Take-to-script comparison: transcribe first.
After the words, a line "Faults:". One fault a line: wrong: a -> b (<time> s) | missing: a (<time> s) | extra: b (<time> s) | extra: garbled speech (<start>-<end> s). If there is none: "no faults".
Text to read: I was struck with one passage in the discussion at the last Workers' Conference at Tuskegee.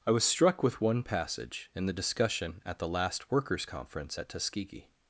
I was struck with one passage in the discussion at the last Workers' Conference at Tuskegee.
Faults:
no faults